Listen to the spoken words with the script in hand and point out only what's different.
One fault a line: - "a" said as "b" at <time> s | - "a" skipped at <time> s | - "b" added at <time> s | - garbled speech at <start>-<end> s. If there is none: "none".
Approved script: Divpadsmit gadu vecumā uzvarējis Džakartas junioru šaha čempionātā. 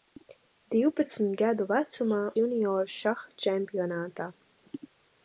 - "uzvarējis Džakartas" skipped at 2.2 s